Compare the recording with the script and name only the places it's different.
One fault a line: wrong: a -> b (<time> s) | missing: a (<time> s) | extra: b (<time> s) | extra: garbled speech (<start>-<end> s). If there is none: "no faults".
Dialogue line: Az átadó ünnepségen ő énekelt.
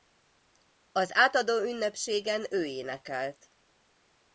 no faults